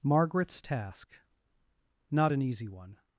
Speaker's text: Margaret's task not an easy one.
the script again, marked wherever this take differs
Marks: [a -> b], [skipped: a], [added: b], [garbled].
Margaret's task not an easy one.